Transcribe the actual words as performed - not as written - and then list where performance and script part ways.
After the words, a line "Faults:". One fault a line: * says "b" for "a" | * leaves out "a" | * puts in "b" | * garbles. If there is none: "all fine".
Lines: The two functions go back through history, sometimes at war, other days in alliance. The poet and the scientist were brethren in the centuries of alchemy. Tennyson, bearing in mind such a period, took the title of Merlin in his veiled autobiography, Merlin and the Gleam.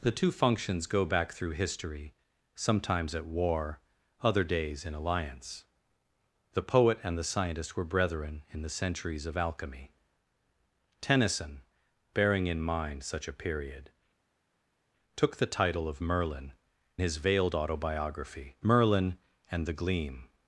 The two functions go back through history, sometimes at war, other days in alliance. The poet and the scientist were brethren in the centuries of alchemy. Tennyson, bearing in mind such a period, took the title of Merlin his veiled autobiography, Merlin and the Gleam.
Faults:
* leaves out "in"